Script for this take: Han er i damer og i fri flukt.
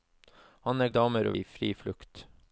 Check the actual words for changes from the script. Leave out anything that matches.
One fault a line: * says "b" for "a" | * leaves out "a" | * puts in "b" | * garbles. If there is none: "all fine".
all fine